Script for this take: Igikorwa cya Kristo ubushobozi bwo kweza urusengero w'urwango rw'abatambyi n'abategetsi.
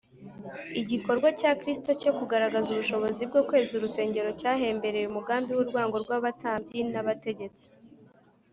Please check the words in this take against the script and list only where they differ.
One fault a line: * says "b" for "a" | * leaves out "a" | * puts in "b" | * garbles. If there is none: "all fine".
* puts in "cyo kugaragaza"
* puts in "cyahembereye umugambi"